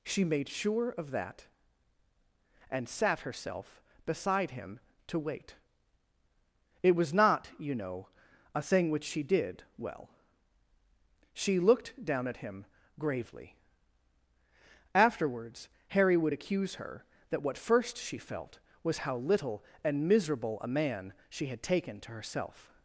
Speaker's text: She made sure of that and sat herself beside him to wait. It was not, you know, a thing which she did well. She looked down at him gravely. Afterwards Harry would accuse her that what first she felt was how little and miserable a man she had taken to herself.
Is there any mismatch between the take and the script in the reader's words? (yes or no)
no